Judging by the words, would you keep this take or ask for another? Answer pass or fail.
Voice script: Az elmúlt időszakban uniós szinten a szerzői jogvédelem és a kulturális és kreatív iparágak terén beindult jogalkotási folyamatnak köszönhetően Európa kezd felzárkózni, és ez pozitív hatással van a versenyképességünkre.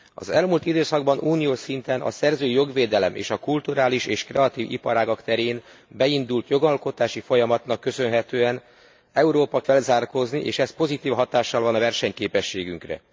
fail